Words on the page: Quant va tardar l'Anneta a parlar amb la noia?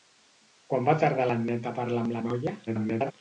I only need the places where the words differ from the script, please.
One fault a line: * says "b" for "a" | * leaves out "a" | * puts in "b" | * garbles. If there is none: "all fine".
* garbles